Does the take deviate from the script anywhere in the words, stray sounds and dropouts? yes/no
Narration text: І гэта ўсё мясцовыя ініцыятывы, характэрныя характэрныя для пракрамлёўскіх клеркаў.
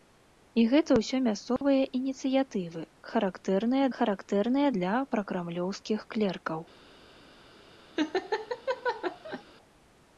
yes